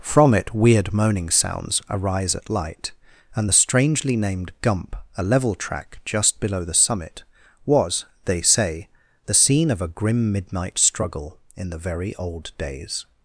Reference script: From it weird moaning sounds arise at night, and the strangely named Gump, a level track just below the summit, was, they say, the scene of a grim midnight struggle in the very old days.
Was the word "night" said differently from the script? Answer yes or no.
yes